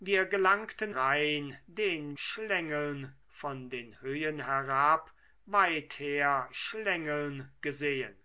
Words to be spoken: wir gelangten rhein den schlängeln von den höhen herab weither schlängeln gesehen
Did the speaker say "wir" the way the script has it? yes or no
yes